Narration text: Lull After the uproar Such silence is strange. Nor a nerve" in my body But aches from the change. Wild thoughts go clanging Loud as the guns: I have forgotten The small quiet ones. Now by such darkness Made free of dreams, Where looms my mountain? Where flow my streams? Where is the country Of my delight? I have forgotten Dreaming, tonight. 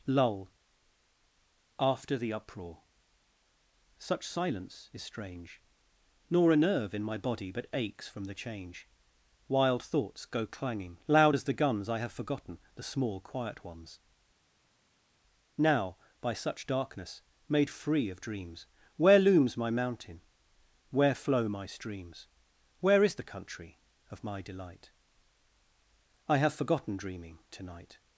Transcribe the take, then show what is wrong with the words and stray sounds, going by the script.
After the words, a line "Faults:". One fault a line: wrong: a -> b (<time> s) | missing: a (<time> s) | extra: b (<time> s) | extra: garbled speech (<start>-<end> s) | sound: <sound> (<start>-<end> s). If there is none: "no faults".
Lull After the uproar Such silence is strange. Nor a nerve" in my body But aches from the change. Wild thoughts go clanging Loud as the guns: I have forgotten The small quiet ones. Now by such darkness Made free of dreams, Where looms my mountain? Where flow my streams? Where is the country Of my delight? I have forgotten Dreaming, tonight.
Faults:
no faults